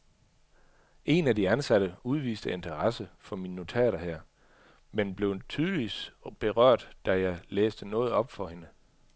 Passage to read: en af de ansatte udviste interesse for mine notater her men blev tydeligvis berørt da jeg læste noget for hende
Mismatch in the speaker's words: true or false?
true